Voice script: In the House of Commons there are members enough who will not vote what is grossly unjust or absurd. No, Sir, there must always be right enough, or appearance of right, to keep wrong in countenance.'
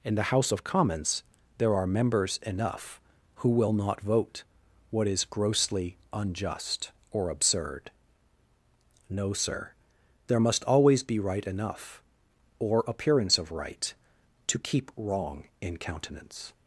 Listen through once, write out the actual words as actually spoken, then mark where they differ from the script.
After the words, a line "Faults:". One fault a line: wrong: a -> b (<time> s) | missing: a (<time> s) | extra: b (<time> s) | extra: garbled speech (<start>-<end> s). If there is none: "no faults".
In the House of Commons there are members enough who will not vote what is grossly unjust or absurd. No, Sir, there must always be right enough, or appearance of right, to keep wrong in countenance.'
Faults:
no faults